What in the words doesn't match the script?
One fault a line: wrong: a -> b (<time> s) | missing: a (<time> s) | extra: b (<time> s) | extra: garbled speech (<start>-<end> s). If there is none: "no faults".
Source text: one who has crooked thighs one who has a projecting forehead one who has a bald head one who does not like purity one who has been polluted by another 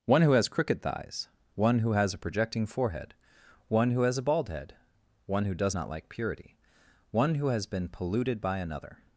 no faults